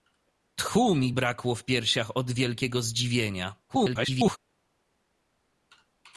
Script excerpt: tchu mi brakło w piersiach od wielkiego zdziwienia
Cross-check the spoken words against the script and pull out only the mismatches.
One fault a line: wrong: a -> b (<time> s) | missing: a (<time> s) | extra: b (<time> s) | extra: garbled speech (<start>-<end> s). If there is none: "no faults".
extra: garbled speech (3.7-4.4 s)